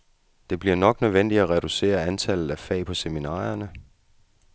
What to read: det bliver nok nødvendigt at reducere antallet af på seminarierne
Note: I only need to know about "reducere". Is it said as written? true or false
true